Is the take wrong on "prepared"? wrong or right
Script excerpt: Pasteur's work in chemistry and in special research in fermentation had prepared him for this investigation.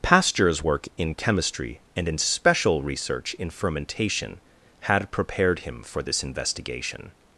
right